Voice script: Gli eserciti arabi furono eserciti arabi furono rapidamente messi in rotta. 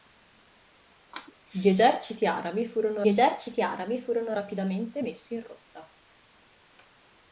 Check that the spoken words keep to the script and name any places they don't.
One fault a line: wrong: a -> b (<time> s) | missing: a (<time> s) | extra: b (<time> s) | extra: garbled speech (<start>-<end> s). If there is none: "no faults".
no faults